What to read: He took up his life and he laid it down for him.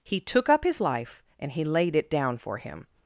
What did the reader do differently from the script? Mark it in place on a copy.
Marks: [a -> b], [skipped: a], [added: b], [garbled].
He took up his life and he laid it down for him.